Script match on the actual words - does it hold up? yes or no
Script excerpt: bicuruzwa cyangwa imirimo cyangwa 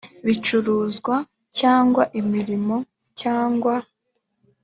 yes